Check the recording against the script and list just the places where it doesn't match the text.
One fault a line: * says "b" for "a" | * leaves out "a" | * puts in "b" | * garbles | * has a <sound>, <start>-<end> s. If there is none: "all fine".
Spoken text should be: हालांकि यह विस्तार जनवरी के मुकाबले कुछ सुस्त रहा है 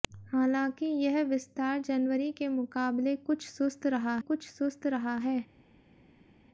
* puts in "कुछ सुस्त रहा"